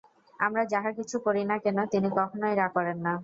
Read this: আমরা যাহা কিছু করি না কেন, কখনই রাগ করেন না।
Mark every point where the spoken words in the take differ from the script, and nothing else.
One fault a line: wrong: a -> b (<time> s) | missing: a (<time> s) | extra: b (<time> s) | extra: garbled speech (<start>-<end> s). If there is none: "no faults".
extra: তিনি (1.9 s)